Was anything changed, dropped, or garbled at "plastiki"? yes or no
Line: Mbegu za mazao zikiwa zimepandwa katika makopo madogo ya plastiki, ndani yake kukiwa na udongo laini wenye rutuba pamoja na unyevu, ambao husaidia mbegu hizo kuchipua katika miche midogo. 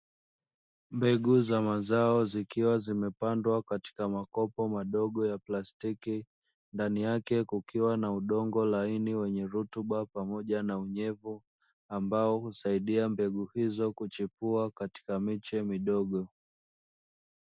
no